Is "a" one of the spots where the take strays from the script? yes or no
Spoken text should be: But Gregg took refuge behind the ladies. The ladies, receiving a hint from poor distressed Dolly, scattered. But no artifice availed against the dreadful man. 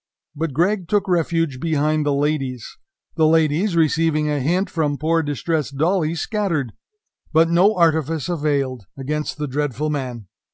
no